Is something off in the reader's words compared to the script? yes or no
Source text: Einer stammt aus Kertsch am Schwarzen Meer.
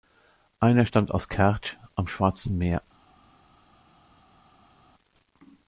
no